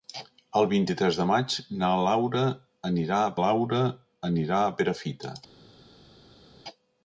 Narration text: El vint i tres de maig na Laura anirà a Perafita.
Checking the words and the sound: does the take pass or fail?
fail